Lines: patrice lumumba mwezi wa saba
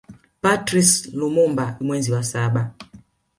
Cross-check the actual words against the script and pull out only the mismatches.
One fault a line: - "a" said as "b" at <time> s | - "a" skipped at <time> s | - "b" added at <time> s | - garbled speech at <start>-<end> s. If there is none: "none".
none